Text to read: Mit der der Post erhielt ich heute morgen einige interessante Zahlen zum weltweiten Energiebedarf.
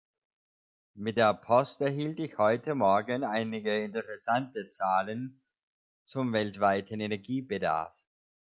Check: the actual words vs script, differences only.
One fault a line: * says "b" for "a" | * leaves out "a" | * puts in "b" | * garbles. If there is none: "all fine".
* leaves out "der"